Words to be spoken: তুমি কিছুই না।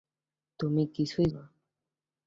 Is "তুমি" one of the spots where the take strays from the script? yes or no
no